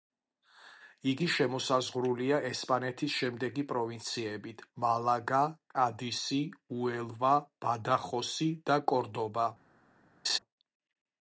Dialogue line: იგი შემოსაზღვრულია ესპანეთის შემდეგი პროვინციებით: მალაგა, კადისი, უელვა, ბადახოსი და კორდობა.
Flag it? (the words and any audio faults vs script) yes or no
yes